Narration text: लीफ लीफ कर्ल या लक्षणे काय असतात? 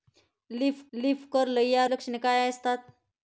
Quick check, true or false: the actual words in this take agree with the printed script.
true